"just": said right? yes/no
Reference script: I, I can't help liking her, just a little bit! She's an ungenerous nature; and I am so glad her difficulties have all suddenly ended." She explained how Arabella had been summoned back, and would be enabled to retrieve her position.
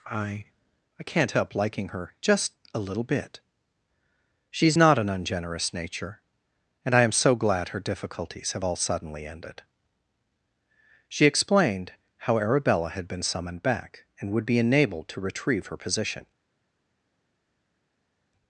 yes